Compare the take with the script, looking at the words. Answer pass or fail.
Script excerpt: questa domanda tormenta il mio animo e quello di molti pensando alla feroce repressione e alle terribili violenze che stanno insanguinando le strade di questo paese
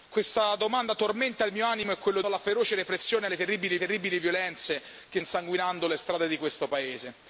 fail